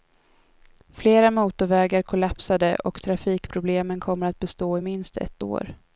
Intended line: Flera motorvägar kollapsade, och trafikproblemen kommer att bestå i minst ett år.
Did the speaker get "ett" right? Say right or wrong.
right